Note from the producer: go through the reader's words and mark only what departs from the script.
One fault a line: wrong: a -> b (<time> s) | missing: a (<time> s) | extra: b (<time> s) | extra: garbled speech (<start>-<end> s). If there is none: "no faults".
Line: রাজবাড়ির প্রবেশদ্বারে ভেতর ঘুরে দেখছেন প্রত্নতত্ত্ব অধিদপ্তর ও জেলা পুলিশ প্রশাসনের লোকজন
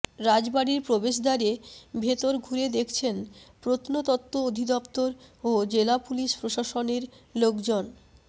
no faults